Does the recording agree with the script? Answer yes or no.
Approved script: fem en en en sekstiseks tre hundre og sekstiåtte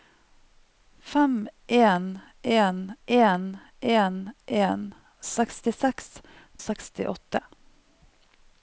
no